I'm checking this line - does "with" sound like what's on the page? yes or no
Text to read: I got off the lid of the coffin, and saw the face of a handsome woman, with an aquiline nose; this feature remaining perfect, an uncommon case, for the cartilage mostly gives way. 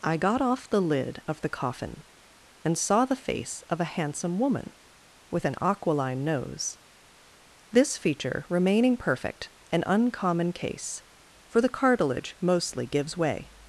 yes